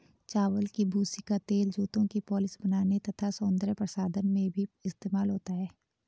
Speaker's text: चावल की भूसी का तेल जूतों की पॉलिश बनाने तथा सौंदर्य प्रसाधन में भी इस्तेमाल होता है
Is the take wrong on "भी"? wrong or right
right